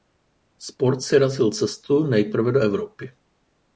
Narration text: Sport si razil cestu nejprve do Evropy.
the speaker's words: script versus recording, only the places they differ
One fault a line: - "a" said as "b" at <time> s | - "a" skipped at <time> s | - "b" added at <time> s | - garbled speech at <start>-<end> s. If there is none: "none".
none